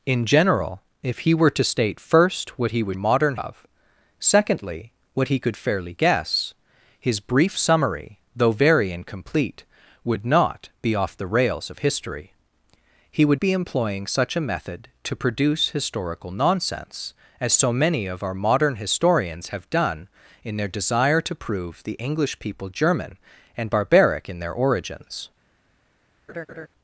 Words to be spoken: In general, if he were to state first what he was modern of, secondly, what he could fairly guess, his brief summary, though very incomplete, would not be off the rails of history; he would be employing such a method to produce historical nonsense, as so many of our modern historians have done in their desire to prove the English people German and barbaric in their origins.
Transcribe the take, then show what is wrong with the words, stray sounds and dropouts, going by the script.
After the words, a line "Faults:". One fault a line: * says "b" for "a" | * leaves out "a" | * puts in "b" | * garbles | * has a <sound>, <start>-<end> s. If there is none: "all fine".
In general, if he were to state first what he was modern of, secondly, what he could fairly guess, his brief summary, though very incomplete, would not be off the rails of history; he would be employing such a method to produce historical nonsense, as so many of our modern historians have done in their desire to prove the English people German and barbaric in their origins.
Faults:
* has a laugh, 26.3-26.7 s